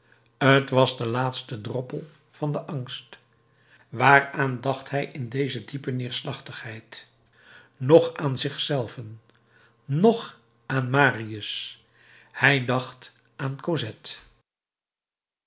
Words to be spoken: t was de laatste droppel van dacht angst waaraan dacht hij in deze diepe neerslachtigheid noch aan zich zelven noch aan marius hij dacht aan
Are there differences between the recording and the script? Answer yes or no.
yes